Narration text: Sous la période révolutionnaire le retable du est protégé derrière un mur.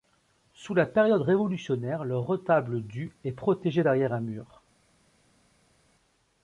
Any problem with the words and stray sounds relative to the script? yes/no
no